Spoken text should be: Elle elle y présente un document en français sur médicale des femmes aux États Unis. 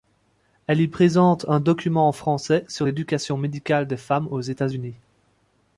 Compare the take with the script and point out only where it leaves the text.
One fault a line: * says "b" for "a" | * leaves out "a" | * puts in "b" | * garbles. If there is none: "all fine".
* leaves out "elle"
* puts in "l'éducation"